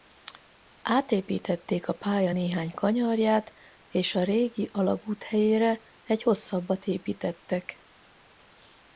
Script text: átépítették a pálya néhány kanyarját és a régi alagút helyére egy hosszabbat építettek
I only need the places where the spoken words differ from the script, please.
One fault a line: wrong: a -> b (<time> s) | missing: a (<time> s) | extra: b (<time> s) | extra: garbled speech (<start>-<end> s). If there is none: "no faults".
no faults